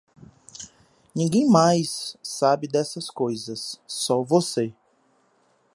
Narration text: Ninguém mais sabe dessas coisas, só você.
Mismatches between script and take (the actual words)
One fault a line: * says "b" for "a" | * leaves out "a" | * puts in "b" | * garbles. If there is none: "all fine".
all fine